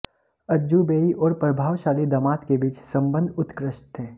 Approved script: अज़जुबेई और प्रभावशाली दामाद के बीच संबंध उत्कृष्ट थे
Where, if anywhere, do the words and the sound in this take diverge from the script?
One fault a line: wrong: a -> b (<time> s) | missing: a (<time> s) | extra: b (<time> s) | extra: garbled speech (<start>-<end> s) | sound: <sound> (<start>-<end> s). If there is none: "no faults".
no faults